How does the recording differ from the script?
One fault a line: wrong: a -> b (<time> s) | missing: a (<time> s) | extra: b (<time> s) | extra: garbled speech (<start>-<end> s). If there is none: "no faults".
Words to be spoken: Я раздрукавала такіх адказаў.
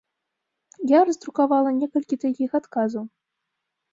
extra: некалькі (1.8 s)